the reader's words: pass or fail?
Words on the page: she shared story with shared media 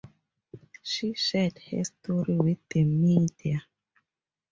fail